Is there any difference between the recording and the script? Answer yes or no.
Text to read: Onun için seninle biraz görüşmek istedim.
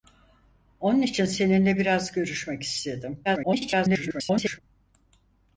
yes